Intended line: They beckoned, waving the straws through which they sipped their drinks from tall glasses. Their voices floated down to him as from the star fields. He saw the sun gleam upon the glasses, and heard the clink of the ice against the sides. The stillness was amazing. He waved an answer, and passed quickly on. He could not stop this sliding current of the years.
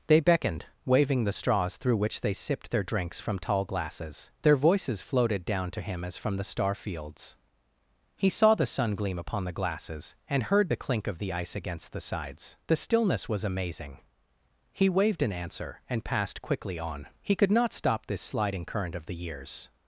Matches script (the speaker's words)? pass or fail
pass